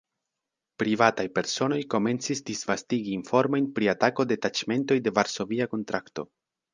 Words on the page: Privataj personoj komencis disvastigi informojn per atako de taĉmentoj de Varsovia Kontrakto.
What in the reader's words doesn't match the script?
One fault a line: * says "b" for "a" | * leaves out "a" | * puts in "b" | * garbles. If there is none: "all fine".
* says "pri" for "per"